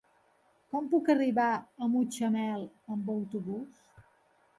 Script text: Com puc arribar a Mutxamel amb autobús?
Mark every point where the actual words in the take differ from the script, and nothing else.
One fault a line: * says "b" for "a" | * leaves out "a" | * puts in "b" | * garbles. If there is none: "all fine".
all fine